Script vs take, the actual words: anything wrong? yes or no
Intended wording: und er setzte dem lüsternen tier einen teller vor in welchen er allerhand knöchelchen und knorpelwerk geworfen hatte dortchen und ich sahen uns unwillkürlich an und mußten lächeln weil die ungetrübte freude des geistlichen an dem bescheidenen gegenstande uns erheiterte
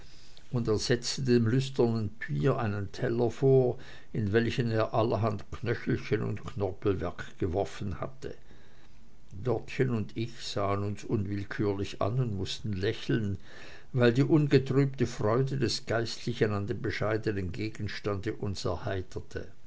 no